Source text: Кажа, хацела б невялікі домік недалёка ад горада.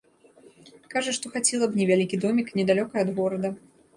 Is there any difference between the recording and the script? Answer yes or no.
yes